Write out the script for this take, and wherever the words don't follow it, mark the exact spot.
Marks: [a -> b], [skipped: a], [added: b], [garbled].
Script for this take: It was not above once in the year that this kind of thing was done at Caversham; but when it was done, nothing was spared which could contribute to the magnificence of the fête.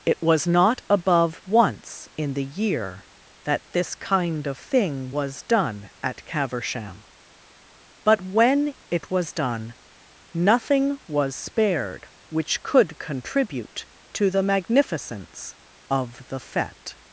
It was not above once in the year that this kind of thing was done at Caversham; but when it was done, nothing was spared which could contribute to the magnificence of the fête.